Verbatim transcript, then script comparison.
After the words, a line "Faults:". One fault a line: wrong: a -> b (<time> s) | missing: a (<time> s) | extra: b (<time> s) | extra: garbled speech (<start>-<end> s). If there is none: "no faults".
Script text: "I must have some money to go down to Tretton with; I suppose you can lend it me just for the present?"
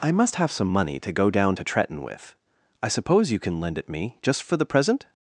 "I must have some money to go down to Tretton with; I suppose you can lend it me just for the present?"
Faults:
no faults